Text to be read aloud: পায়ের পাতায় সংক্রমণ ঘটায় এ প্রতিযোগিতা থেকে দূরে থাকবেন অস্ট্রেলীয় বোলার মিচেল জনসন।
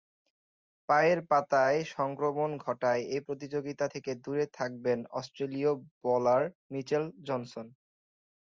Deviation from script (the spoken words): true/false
false